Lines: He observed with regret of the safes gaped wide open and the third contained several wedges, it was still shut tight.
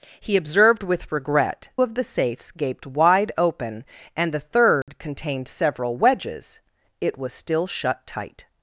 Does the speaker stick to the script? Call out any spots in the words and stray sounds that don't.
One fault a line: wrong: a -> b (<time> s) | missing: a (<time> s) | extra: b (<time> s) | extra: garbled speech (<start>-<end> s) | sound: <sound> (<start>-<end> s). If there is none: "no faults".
sound: dropout (4.8-4.9 s)